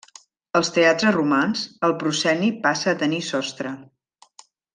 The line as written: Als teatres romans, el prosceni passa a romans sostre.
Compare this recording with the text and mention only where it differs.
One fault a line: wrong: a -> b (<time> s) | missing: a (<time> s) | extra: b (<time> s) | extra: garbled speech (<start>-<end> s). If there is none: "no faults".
wrong: romans -> tenir (3.0 s)